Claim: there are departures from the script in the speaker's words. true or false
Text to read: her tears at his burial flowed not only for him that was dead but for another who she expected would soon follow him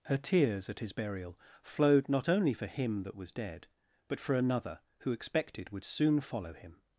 true